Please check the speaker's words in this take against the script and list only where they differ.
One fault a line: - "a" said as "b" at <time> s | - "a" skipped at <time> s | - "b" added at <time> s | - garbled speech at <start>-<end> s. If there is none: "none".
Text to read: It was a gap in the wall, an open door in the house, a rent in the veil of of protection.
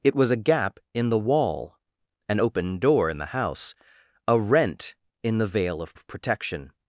none